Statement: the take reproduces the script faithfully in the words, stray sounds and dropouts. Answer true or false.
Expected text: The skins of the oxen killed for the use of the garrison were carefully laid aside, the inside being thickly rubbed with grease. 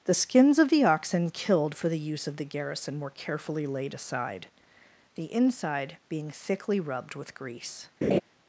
false